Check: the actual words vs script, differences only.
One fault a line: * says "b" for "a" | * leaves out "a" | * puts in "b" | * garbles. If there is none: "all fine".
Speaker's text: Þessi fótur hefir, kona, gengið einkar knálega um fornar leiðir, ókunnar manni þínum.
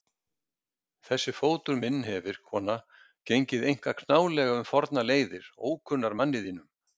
* puts in "minn"